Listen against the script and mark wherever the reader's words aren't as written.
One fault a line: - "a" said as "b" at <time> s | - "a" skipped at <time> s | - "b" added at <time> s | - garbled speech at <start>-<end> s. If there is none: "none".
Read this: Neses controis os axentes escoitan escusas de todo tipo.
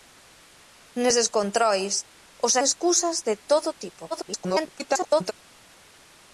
- "axentes escoitan" skipped at 2.5 s
- garbled speech at 4.1-5.3 s